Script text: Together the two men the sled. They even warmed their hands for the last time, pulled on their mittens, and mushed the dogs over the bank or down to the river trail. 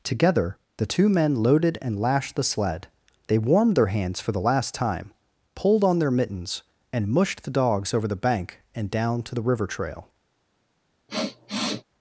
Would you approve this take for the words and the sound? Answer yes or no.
no